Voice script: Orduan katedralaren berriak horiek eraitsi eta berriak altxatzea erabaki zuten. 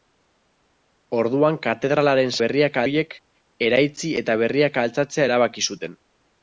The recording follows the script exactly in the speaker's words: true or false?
true